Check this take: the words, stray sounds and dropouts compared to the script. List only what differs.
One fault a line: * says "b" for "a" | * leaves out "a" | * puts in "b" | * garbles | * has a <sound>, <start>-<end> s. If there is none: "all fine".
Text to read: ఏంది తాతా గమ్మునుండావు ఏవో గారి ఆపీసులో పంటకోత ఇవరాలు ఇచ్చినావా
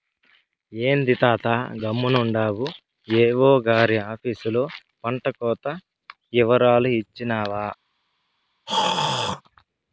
* has a throat clearing, 8.7-9.4 s